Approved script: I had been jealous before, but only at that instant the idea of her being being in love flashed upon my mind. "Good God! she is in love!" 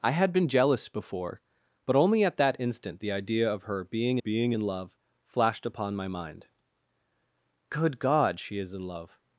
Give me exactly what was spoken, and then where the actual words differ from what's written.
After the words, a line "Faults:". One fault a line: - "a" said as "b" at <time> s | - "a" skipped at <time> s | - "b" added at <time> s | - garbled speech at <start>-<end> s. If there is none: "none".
I had been jealous before, but only at that instant the idea of her being being in love flashed upon my mind. "Good God! she is in love!"
Faults:
none